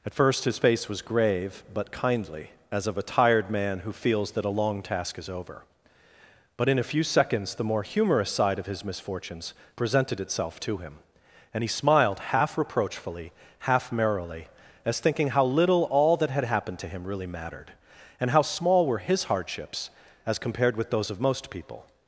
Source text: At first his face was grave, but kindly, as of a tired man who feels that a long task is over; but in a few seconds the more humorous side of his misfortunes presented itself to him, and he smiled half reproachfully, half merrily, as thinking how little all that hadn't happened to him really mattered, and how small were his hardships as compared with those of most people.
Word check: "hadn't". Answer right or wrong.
wrong